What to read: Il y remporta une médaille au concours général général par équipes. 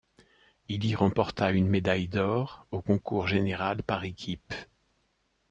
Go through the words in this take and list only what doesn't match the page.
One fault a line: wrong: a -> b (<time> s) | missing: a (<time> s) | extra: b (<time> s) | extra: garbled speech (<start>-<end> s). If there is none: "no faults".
extra: d'or (2.1 s)
missing: général (3.8 s)